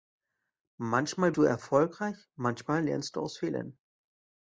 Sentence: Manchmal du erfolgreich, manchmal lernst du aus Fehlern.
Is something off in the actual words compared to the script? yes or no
no